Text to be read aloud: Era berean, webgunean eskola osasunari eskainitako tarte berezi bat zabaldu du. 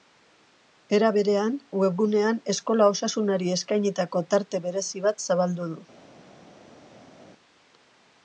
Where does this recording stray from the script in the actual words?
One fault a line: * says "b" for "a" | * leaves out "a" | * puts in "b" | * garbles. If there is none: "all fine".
all fine